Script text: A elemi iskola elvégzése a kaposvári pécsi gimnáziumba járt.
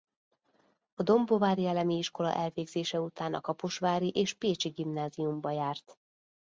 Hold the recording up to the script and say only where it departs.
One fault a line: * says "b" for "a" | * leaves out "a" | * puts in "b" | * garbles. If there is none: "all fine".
* puts in "dombóvári"
* puts in "után"
* puts in "és"